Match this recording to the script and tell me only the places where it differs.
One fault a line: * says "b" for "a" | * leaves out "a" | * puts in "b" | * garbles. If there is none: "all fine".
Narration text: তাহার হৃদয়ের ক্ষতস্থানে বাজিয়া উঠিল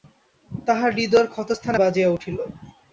all fine